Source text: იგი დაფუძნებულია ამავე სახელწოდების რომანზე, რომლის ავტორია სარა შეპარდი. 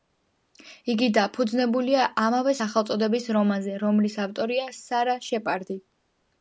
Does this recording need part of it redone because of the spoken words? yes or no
no